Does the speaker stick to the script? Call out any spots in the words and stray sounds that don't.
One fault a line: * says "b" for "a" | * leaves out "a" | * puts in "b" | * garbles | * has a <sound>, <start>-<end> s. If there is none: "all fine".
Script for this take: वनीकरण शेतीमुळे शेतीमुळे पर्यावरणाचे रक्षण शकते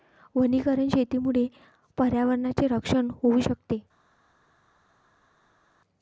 * leaves out "शेतीमुळे"
* puts in "होऊ"